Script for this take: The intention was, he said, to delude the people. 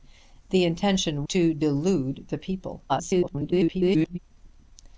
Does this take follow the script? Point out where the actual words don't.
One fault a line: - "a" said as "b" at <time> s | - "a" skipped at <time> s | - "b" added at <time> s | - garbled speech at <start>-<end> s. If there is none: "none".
- "was he said" skipped at 1.2 s
- garbled speech at 2.9-4.2 s